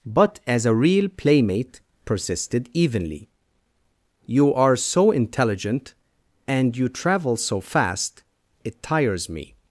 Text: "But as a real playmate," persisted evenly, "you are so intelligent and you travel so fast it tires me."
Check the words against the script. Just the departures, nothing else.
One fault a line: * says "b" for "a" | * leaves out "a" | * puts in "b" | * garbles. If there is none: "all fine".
all fine